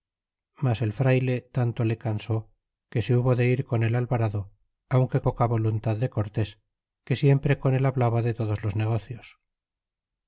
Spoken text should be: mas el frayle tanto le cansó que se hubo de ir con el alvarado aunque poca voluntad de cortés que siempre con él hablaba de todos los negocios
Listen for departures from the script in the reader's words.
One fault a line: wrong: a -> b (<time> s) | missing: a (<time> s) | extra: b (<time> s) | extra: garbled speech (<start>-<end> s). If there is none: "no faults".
no faults